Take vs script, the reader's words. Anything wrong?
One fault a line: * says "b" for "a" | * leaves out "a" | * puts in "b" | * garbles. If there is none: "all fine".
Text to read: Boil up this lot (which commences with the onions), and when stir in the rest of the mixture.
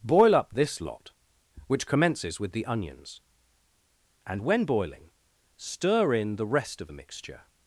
* puts in "boiling"